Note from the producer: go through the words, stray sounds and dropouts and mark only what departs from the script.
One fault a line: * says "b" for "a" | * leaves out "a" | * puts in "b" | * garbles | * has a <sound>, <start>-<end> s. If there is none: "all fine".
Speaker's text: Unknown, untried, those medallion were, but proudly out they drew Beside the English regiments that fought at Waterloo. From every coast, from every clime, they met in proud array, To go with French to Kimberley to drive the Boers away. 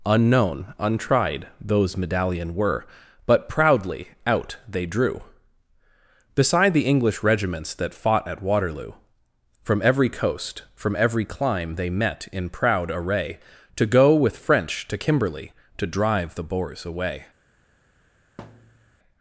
* has a thud, 18.4-18.9 s